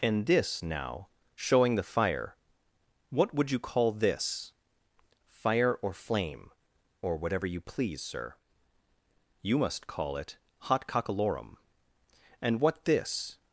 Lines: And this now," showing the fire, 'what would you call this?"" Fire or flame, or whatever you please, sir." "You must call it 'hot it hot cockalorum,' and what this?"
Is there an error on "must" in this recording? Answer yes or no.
no